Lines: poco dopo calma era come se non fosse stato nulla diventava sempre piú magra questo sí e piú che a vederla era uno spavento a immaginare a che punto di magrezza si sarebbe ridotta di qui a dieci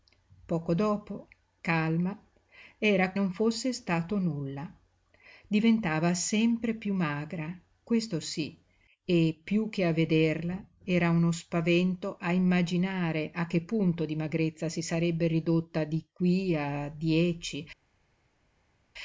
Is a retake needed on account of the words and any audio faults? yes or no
yes